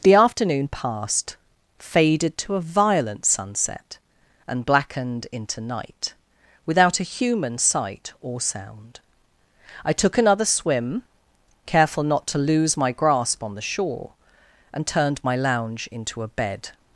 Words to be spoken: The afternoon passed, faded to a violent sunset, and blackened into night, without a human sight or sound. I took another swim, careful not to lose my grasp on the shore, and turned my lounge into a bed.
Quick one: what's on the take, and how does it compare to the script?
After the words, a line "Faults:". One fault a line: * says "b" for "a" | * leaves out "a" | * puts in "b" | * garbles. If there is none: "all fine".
The afternoon passed, faded to a violent sunset, and blackened into night, without a human sight or sound. I took another swim, careful not to lose my grasp on the shore, and turned my lounge into a bed.
Faults:
all fine